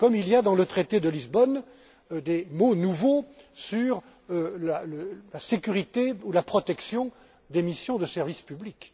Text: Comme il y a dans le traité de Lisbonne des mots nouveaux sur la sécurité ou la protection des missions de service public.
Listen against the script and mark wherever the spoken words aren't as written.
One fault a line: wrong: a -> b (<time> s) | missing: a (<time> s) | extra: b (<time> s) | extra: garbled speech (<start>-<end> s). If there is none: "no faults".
no faults